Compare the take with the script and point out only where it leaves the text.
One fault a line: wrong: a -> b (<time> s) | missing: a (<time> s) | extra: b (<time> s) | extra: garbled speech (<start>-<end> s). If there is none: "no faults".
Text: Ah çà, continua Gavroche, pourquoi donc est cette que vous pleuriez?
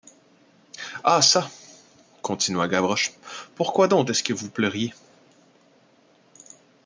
wrong: cette -> ce (4.1 s)